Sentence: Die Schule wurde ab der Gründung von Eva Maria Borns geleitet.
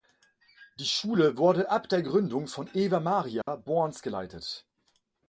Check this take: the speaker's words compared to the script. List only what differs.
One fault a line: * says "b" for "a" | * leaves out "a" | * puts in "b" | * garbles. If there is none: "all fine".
all fine